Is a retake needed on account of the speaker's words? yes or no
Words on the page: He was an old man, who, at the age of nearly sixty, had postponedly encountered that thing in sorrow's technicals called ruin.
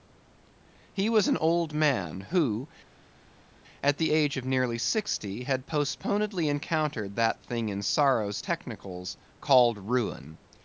no